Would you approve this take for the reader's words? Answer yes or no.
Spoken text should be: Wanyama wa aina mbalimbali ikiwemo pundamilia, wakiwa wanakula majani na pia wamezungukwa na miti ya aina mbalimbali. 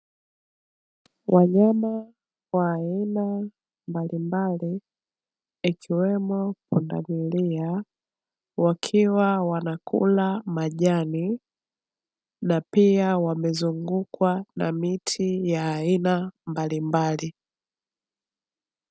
yes